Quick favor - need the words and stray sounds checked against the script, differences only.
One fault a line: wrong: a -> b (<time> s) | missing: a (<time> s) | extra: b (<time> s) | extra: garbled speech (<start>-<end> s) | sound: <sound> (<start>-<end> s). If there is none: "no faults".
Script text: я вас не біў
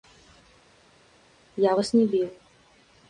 no faults